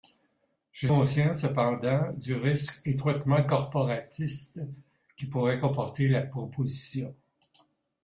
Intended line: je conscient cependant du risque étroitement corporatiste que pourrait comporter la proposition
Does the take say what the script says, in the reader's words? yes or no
yes